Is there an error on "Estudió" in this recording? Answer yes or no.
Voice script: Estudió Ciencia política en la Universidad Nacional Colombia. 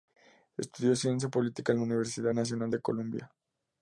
no